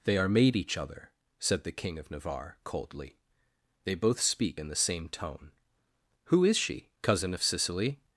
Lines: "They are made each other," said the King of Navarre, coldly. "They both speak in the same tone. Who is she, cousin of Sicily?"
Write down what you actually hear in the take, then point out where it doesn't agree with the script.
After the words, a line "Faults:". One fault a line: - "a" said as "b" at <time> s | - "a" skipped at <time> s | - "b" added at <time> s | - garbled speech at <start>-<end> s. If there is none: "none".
"They are made each other," said the King of Navarre, coldly. "They both speak in the same tone. Who is she, cousin of Sicily?"
Faults:
none